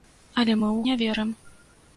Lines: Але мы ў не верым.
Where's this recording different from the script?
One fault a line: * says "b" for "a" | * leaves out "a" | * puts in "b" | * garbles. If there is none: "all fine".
all fine